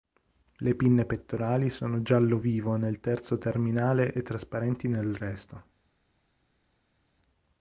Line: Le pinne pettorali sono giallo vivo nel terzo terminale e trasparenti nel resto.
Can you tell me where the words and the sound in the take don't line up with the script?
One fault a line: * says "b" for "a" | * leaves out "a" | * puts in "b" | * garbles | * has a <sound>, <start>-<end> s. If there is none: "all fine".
all fine